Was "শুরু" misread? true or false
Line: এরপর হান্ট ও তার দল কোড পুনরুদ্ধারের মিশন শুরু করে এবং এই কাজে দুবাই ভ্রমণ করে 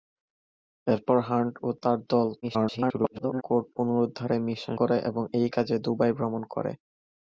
true